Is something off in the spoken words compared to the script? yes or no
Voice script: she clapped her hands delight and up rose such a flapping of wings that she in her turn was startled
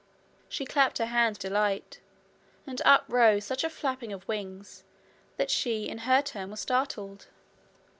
no